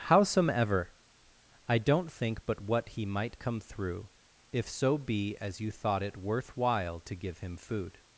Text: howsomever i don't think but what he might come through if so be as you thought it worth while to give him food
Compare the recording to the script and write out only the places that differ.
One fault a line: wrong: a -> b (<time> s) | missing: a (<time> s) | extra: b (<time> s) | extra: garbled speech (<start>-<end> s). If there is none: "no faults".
no faults